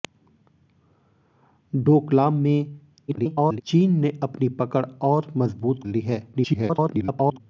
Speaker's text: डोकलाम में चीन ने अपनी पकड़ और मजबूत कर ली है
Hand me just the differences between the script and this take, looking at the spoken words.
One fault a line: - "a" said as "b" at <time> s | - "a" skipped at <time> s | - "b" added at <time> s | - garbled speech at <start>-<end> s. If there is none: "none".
- garbled speech at 3.1-3.6 s
- "कर" skipped at 5.9 s
- garbled speech at 6.3-7.4 s